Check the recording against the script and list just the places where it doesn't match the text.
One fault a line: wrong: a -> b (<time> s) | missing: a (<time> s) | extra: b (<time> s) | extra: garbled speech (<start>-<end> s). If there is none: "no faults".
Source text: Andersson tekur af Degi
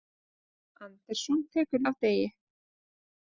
no faults